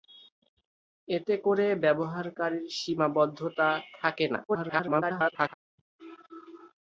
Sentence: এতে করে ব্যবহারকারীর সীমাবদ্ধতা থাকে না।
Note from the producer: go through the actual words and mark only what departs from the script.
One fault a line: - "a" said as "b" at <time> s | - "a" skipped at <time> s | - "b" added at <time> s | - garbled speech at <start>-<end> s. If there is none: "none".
- garbled speech at 4.5-5.5 s